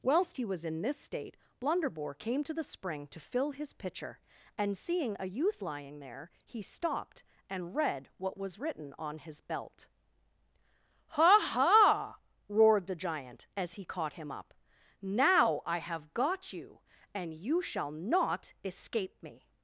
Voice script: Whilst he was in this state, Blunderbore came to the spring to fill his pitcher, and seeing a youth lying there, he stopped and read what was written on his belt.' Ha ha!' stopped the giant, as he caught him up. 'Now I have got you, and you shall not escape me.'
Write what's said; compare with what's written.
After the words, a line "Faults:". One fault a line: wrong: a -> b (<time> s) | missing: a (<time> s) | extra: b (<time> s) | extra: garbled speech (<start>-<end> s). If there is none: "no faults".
Whilst he was in this state, Blunderbore came to the spring to fill his pitcher, and seeing a youth lying there, he stopped and read what was written on his belt.' Ha ha!' roared the giant, as he caught him up. 'Now I have got you, and you shall not escape me.'
Faults:
wrong: stopped -> roared (12.5 s)